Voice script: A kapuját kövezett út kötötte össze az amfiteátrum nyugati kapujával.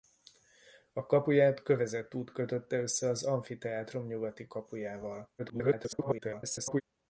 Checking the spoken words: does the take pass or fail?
fail